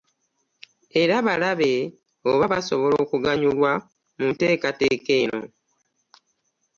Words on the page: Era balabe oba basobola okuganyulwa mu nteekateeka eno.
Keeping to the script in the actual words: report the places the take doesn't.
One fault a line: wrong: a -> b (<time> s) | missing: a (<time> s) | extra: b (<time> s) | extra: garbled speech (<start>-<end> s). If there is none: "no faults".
no faults